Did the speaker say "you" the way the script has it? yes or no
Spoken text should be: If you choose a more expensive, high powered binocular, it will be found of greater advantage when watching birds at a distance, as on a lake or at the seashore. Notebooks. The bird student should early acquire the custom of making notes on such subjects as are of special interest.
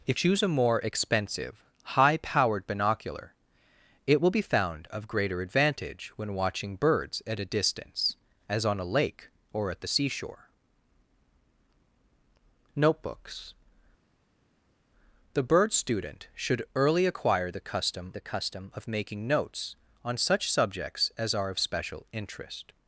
no